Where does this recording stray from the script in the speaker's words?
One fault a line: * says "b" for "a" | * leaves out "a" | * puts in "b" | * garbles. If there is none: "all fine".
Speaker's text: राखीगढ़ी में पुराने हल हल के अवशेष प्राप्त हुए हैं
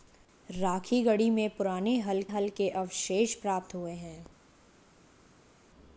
all fine